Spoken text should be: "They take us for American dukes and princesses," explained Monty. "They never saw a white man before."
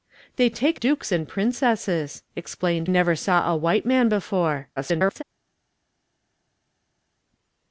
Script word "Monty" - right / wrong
wrong